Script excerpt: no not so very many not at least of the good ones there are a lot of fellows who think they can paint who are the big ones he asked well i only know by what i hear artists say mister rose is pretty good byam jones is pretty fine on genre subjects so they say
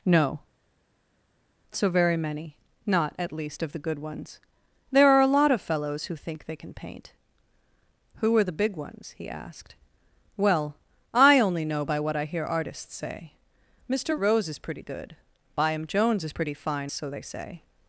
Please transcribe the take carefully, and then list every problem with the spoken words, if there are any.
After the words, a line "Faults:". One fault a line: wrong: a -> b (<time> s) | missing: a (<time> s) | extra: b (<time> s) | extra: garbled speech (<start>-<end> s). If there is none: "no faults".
no so very many not at least of the good ones there are a lot of fellows who think they can paint who are the big ones he asked well i only know by what i hear artists say mister rose is pretty good byam jones is pretty fine so they say
Faults:
missing: not (0.4 s)
missing: on genre subjects (16.9 s)